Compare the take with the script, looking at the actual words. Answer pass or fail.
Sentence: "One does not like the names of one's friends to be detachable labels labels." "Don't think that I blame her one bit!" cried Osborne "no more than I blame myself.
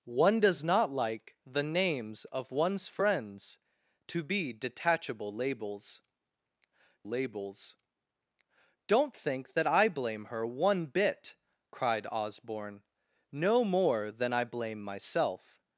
pass